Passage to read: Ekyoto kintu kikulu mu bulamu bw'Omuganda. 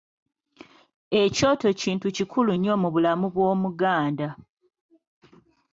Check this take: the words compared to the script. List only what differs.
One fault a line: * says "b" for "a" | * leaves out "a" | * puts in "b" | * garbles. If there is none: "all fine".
* puts in "nnyo"